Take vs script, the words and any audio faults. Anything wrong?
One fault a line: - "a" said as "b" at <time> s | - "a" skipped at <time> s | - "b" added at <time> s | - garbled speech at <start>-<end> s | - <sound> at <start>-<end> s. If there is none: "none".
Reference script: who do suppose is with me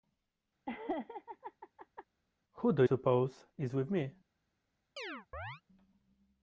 - laugh at 0.7-2.1 s
- chirp at 5.0-5.6 s